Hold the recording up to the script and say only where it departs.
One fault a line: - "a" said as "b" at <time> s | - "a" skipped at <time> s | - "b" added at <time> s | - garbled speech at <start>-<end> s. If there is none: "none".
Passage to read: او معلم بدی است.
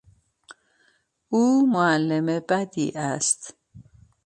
none